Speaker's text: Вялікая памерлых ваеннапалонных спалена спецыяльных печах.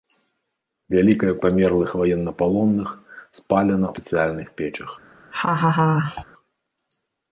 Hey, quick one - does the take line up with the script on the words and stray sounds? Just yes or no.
no